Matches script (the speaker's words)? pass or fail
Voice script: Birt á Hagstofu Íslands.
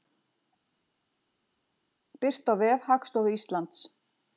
fail